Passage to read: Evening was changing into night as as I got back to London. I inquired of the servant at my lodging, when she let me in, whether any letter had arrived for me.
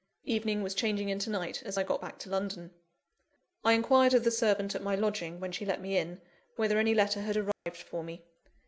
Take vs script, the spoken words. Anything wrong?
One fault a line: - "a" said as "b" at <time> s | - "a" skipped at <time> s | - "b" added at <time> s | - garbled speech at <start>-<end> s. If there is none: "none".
- "as" skipped at 1.8 s